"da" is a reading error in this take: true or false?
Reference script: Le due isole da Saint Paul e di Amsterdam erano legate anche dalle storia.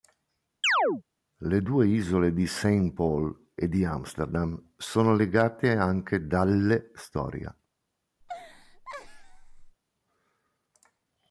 true